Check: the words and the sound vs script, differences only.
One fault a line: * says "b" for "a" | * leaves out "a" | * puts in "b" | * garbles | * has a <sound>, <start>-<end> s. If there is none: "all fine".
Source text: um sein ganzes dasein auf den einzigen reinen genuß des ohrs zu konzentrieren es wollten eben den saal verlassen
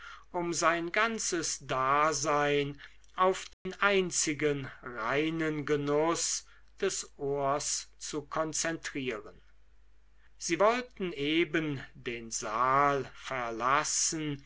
* has a dropout, 3.5-3.7 s
* says "sie" for "es"